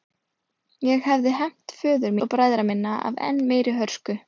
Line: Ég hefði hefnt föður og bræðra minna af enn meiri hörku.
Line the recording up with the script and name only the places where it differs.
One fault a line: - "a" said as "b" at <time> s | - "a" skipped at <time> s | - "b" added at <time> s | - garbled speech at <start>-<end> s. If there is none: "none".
none